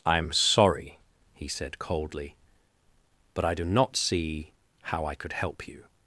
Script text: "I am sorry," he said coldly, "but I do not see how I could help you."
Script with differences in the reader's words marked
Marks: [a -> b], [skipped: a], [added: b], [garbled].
"I am sorry," he said coldly, "but I do not see how I could help you."